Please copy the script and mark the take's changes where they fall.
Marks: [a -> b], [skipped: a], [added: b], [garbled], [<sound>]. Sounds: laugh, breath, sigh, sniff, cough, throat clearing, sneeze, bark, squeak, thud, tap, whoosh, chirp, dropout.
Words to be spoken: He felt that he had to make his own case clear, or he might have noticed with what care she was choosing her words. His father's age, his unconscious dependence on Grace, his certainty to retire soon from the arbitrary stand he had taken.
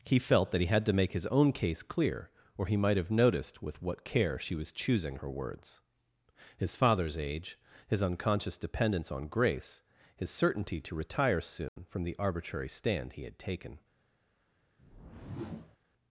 He felt that he had to make his own case clear, or he might have noticed with what care she was choosing her words. His father's age, his unconscious dependence on Grace, his certainty to retire soon [dropout] from the arbitrary stand he had taken. [whoosh]